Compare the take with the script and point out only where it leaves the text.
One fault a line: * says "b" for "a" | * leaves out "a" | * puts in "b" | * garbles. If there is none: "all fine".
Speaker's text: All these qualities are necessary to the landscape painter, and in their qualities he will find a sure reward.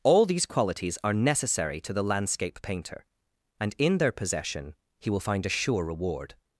* says "possession" for "qualities"